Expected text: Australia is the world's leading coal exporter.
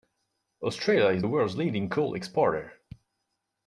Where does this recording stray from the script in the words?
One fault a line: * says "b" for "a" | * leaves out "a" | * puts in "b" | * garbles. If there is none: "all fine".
all fine